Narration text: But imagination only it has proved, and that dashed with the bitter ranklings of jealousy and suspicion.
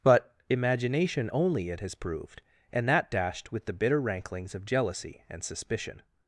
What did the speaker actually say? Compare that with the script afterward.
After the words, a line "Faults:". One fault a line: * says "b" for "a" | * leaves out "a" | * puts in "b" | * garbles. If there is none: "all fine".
But imagination only it has proved, and that dashed with the bitter ranklings of jealousy and suspicion.
Faults:
all fine